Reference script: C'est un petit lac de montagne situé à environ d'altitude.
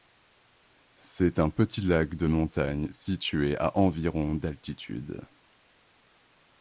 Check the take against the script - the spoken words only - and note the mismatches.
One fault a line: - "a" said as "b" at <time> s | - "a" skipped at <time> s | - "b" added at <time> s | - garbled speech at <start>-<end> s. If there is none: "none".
none